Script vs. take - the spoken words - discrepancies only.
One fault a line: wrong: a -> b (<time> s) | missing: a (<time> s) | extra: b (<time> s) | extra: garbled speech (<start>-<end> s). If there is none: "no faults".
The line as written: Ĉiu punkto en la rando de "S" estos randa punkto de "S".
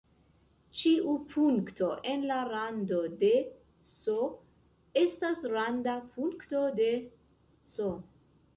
wrong: estos -> estas (5.0 s)